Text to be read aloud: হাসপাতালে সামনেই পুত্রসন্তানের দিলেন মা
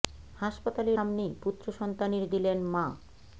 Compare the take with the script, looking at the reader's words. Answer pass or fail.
pass